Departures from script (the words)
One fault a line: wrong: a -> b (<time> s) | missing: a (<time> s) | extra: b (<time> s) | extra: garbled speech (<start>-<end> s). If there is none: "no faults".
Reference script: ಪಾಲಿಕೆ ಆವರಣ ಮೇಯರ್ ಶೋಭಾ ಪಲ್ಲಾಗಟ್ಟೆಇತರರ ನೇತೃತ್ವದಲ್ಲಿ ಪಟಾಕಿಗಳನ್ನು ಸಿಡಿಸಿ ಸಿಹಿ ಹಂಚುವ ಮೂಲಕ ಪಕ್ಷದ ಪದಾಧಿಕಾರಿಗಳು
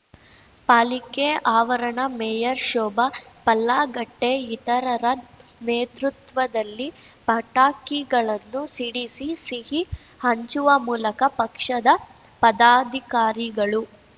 no faults